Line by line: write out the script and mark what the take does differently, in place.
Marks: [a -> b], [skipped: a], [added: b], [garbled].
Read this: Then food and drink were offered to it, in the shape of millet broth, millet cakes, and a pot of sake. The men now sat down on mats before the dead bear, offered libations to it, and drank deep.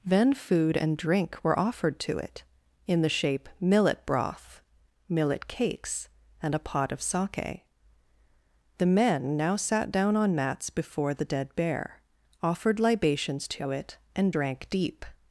Then food and drink were offered to it, in the shape [skipped: of] millet broth, millet cakes, and a pot of sake. The men now sat down on mats before the dead bear, offered libations to it, and drank deep.